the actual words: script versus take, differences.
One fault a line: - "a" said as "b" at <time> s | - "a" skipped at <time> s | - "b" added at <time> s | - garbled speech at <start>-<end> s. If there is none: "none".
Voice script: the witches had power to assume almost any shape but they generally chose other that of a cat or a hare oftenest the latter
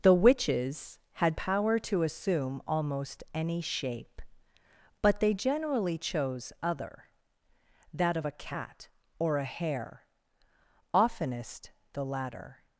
none